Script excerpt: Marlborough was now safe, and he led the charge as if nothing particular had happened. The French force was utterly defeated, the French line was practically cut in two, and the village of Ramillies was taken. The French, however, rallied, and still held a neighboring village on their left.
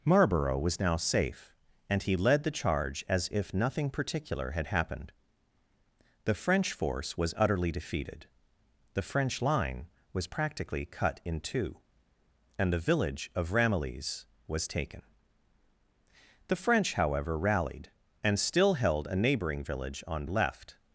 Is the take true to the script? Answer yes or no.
no